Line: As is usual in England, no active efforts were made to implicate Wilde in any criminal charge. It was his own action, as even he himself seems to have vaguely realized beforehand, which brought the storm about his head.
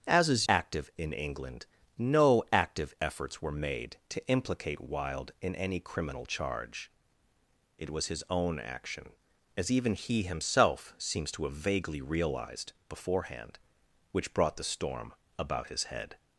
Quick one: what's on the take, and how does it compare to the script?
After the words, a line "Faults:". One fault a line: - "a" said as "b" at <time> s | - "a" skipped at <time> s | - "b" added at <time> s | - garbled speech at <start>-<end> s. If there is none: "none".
As is active in England, no active efforts were made to implicate Wilde in any criminal charge. It was his own action, as even he himself seems to have vaguely realized beforehand, which brought the storm about his head.
Faults:
- "usual" said as "active" at 0.5 s